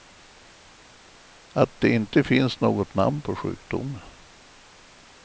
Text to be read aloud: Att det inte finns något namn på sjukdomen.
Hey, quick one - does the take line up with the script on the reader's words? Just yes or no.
yes